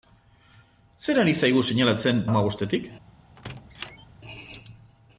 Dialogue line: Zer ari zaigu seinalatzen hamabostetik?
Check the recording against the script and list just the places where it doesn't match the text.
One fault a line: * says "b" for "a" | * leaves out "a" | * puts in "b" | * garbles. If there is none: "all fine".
all fine